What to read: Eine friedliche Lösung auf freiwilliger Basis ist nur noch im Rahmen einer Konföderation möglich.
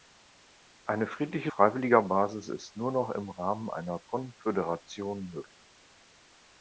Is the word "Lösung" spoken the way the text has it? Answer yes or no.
no